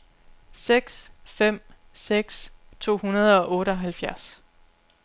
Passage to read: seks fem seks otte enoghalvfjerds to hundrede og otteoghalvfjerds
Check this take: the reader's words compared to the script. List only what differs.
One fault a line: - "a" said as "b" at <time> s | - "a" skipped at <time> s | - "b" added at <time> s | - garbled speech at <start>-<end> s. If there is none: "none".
- "otte enoghalvfjerds" skipped at 2.5 s